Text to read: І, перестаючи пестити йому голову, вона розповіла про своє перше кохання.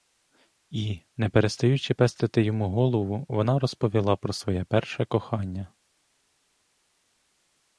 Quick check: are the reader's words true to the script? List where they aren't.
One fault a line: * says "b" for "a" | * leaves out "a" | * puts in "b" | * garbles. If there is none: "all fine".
* puts in "не"